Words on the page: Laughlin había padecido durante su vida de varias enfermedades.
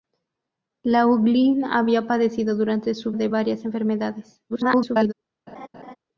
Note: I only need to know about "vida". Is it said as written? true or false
false